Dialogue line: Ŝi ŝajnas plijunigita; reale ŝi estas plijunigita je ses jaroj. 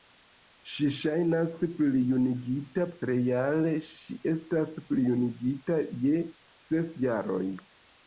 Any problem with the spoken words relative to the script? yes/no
no